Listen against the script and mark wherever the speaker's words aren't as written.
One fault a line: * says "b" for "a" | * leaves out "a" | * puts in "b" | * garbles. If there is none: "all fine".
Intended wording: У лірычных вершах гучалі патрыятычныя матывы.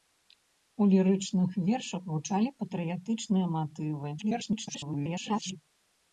* garbles